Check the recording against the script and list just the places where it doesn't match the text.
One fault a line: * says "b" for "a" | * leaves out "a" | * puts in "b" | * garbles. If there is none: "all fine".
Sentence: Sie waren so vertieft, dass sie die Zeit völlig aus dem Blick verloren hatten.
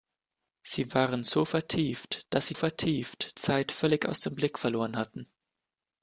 * says "vertieft" for "die"